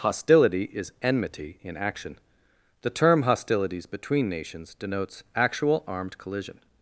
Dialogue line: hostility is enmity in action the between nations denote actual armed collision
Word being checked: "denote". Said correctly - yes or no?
no